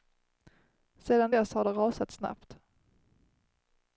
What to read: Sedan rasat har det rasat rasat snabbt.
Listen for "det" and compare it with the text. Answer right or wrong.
right